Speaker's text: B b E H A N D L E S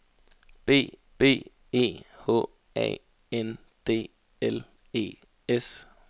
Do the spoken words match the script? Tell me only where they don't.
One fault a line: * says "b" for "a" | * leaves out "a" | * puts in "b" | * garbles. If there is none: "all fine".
all fine